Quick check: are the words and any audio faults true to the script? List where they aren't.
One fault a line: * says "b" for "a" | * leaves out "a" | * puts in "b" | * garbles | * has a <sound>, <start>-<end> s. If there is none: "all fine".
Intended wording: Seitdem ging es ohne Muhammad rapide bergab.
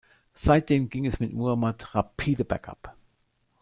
* says "mit" for "ohne"